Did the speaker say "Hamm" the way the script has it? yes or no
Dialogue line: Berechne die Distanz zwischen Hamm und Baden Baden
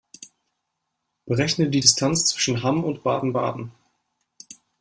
yes